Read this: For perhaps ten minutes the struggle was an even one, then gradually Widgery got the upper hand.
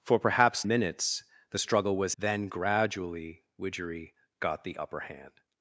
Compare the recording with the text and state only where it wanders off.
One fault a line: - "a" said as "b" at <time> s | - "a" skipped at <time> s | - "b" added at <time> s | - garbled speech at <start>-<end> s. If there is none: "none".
- "ten" skipped at 0.6 s
- "an even one" skipped at 2.1 s